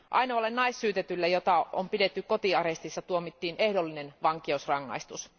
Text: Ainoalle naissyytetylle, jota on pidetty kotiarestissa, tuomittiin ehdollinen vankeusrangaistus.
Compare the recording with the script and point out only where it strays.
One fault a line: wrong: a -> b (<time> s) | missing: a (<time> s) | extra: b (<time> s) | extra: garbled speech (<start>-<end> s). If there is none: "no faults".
no faults